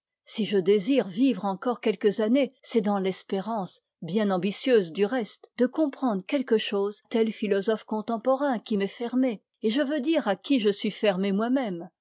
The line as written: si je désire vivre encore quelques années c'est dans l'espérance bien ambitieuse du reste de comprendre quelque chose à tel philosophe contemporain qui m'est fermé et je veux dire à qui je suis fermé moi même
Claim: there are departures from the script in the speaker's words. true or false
true